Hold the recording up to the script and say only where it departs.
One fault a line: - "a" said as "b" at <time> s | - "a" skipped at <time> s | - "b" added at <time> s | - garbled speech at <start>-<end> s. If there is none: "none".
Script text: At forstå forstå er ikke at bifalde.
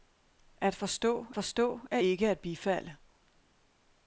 none